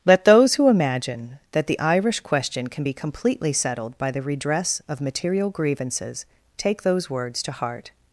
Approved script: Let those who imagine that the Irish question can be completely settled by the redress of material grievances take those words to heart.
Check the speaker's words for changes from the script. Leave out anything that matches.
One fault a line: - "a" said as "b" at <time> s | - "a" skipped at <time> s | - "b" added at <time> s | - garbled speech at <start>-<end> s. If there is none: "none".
none